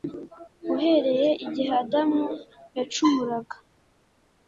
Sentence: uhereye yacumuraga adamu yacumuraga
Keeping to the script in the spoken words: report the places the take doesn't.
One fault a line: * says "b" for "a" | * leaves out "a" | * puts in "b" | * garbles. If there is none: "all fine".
* says "igihe" for "yacumuraga"